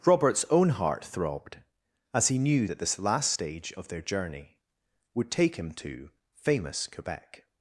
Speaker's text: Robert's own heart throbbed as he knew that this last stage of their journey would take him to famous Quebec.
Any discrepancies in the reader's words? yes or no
no